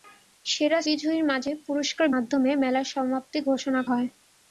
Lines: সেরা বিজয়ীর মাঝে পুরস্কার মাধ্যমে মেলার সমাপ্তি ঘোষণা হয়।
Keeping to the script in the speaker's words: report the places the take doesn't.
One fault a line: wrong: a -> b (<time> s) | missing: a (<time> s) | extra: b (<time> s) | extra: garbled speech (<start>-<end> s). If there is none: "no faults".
no faults